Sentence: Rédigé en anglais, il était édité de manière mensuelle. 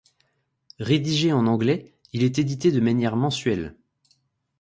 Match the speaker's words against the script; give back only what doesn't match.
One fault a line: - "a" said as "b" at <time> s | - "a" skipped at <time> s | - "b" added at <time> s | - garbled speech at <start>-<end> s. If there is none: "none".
- "était" said as "est" at 2.2 s